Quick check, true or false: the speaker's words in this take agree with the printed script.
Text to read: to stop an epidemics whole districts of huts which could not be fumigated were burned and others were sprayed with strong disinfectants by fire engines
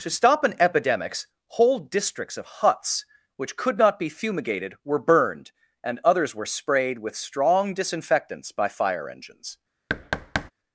true